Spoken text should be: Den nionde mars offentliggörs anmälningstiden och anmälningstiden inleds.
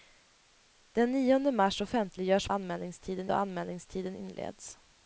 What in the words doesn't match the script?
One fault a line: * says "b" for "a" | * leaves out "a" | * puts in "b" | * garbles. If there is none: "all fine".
all fine